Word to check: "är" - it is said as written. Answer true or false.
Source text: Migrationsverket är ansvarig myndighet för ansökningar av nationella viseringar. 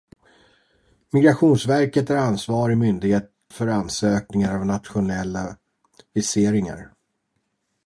true